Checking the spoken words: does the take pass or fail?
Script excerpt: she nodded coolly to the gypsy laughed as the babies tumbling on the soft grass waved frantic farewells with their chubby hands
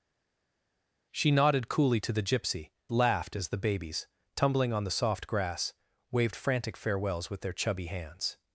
pass